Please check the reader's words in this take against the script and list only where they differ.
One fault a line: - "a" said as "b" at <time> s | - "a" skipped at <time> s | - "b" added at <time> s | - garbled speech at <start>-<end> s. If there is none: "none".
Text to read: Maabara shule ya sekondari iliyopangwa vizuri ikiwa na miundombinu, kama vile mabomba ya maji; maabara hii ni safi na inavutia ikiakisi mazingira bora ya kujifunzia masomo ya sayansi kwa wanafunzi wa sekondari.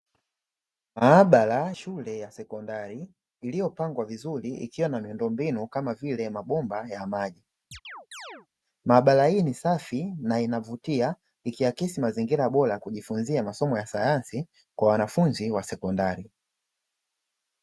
none